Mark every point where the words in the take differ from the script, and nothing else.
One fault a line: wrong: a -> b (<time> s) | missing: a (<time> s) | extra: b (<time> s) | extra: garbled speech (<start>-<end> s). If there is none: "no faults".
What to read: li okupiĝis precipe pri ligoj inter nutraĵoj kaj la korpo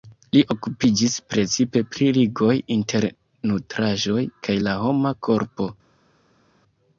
extra: homa (4.8 s)